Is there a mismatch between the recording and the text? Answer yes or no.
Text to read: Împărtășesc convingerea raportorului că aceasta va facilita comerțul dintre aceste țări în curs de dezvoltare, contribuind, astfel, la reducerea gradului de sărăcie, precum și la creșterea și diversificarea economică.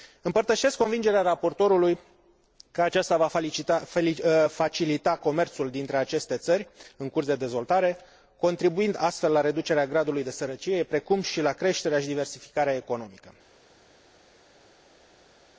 no